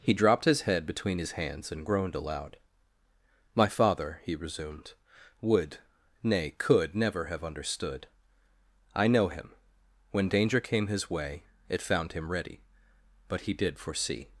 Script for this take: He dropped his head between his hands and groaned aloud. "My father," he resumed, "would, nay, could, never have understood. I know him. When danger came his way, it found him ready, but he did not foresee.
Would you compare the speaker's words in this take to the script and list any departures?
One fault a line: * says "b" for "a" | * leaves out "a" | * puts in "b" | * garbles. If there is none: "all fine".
* leaves out "not"